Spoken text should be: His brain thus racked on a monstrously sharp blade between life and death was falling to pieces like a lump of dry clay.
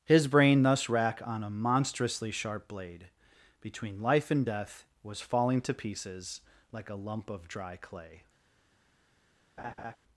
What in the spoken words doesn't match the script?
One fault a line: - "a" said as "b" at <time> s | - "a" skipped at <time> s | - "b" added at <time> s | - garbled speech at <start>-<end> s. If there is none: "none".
- "racked" said as "rack" at 0.9 s